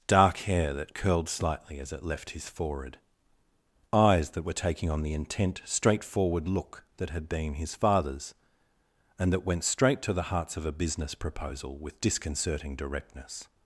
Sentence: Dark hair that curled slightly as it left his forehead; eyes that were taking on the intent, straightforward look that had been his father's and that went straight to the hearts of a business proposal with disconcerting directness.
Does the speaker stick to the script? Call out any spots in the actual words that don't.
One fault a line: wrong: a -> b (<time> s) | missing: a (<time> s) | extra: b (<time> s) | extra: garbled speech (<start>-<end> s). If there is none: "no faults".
no faults